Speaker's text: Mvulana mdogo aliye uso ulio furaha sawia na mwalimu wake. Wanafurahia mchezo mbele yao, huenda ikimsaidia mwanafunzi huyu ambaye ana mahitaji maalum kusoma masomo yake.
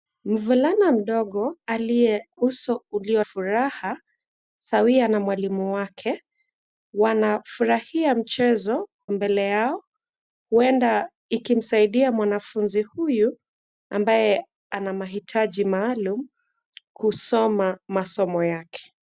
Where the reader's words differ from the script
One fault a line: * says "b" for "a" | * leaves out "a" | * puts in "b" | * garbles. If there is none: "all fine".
all fine